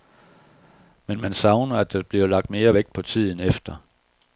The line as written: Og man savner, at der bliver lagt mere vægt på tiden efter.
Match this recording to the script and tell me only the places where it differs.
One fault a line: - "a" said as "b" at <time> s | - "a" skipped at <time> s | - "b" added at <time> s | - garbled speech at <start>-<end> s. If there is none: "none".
- "Og" said as "Men" at 1.1 s